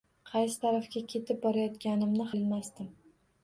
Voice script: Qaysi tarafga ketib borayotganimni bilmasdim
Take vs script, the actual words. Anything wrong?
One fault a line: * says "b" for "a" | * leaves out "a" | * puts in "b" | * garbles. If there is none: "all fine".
all fine